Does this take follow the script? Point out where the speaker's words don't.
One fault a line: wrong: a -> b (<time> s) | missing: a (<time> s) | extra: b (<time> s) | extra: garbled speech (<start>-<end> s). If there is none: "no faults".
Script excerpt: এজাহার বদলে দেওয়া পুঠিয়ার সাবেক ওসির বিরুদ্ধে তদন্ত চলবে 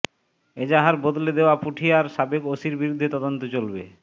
no faults